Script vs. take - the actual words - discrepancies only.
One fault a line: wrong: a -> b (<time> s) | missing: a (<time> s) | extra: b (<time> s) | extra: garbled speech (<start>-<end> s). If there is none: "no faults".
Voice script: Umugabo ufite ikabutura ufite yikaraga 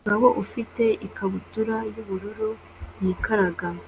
wrong: ufite -> yubururu (1.9 s)